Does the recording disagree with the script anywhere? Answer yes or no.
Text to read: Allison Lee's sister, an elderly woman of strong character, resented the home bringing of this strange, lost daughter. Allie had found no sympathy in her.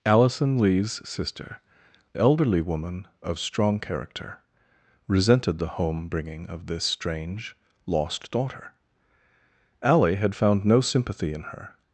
yes